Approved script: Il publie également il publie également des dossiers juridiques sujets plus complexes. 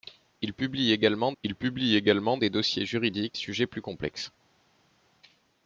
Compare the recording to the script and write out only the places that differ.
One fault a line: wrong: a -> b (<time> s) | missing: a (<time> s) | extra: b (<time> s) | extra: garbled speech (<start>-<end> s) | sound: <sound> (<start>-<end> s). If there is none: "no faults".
no faults